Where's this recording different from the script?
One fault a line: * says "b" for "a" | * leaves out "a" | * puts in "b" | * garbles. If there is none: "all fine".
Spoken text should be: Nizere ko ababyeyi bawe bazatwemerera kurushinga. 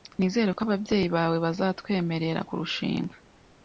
all fine